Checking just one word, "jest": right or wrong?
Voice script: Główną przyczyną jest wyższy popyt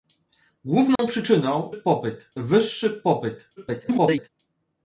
wrong